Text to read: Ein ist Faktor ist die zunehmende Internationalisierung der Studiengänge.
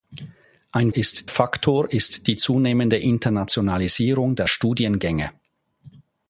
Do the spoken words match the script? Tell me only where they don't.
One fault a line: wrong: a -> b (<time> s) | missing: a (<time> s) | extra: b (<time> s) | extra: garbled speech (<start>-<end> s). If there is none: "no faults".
no faults